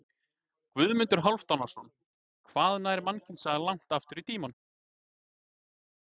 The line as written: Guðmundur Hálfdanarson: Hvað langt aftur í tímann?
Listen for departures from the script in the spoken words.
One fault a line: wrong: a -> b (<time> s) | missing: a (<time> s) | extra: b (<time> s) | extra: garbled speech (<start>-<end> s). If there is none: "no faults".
extra: nær mannkynssagan (2.9 s)